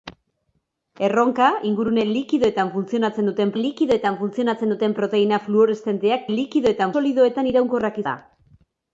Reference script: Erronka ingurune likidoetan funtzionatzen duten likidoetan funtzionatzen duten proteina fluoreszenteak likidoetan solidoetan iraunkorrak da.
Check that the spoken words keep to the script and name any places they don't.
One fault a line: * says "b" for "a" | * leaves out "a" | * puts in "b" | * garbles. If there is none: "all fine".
all fine